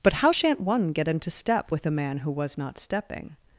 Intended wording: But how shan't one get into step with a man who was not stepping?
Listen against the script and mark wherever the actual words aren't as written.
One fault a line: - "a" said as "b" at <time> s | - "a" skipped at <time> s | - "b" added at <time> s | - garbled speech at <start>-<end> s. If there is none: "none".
none